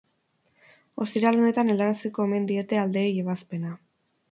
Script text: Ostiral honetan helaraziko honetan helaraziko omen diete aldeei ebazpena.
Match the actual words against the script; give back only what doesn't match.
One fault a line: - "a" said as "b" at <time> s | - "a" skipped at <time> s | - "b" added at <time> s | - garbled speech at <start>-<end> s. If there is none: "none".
- "honetan helaraziko" skipped at 2.2 s